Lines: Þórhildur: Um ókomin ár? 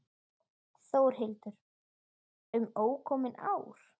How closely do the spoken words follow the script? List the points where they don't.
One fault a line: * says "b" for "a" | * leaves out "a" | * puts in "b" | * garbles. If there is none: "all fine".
all fine